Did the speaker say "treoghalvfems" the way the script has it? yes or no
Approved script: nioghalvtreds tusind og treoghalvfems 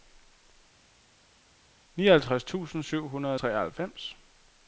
yes